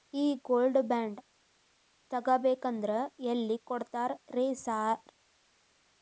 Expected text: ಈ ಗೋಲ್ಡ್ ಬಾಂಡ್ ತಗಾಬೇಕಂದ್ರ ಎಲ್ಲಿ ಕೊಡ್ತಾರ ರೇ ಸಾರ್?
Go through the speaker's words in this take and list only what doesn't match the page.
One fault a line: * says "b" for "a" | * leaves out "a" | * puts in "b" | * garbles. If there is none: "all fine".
all fine